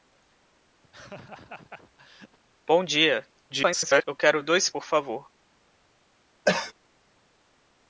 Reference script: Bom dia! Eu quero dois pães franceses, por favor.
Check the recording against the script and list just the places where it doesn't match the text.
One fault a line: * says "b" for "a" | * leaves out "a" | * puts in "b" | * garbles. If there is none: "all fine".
* garbles
* leaves out "pães franceses"